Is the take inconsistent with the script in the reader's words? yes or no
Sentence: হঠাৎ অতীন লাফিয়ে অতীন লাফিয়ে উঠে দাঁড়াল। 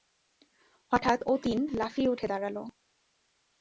yes